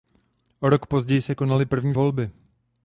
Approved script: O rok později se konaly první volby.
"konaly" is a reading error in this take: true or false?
false